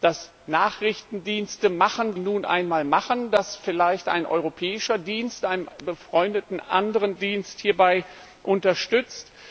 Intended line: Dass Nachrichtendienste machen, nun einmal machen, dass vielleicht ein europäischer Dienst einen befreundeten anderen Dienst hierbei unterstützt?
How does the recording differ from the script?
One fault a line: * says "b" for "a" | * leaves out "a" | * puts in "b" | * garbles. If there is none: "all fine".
all fine